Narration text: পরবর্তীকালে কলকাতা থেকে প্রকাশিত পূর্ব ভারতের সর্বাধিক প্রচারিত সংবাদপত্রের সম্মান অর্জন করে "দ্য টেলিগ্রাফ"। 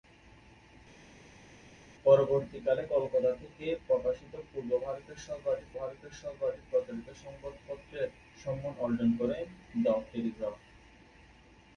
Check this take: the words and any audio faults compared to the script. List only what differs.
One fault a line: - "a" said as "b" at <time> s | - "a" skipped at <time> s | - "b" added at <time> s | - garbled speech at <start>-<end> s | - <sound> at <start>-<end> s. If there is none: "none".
- "ভারতের সর্বাধিক" added at 5.8 s